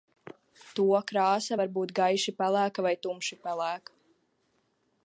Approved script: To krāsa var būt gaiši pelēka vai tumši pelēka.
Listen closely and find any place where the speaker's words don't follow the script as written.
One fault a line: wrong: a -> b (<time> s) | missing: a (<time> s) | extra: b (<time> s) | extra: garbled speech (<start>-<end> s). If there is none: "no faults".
no faults